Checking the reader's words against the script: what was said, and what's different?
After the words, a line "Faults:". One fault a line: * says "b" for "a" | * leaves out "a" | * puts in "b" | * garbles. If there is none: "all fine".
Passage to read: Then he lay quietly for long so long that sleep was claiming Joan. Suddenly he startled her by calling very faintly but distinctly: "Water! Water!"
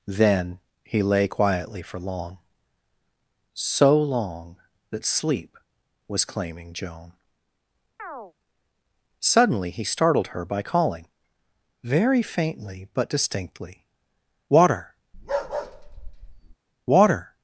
Then he lay quietly for long so long that sleep was claiming Joan. Suddenly he startled her by calling very faintly but distinctly: "Water! Water!"
Faults:
all fine